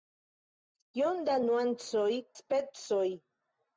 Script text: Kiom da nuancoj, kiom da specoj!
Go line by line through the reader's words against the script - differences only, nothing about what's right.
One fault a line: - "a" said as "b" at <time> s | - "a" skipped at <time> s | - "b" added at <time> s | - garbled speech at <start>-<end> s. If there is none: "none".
- "kiom da" skipped at 2.1 s